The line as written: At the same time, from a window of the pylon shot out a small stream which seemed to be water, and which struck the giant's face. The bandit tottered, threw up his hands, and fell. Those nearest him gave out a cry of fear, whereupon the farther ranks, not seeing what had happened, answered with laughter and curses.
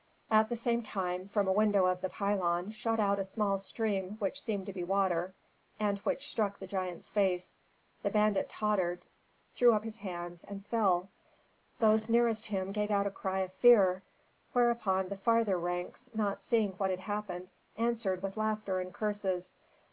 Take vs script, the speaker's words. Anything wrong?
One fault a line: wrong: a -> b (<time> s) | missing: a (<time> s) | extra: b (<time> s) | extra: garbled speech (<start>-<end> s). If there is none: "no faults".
no faults